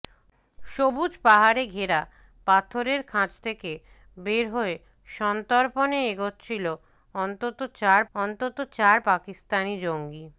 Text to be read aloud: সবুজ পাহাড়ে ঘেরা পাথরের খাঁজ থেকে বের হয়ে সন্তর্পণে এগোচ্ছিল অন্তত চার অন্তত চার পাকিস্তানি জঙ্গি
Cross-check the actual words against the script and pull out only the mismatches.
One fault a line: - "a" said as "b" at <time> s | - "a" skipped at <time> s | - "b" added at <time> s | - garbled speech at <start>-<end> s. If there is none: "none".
none